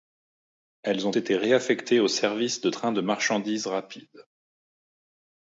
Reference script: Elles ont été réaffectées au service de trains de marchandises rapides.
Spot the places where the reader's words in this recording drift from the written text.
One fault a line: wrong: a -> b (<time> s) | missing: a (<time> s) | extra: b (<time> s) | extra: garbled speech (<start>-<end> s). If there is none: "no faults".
no faults